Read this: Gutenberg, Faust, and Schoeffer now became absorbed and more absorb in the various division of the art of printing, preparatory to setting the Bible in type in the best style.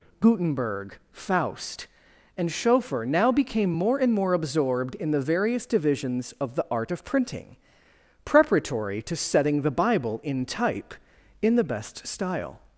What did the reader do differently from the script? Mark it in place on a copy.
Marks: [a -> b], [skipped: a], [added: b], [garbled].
Gutenberg, Faust, and Schoeffer now became [absorbed -> more] and more [absorb -> absorbed] in the various [division -> divisions] of the art of printing, preparatory to setting the Bible in type in the best style.